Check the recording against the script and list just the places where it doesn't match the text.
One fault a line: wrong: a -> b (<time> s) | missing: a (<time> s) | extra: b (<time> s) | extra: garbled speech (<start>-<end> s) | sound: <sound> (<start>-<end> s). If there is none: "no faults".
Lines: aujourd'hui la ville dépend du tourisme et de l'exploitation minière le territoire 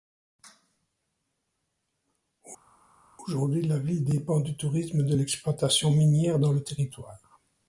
extra: dans (6.4 s)